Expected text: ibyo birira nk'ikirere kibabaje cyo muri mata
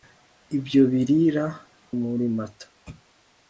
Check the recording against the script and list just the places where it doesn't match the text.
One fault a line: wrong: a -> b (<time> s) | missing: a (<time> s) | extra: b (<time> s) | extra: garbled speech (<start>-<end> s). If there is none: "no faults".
missing: nk'ikirere kibabaje cyo (1.4 s)